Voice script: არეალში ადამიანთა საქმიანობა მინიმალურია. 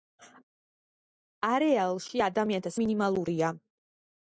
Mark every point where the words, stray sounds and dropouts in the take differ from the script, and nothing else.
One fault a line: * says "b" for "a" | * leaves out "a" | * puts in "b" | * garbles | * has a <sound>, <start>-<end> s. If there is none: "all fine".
* leaves out "საქმიანობა"